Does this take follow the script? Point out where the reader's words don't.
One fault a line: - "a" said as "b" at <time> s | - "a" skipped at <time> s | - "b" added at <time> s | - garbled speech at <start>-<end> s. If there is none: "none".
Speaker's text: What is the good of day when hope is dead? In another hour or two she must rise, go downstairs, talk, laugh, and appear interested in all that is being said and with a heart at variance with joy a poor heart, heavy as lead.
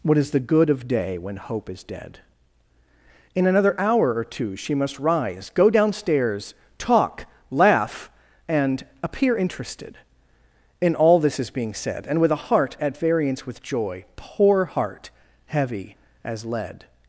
- "that" said as "this" at 11.2 s
- "a" skipped at 14.0 s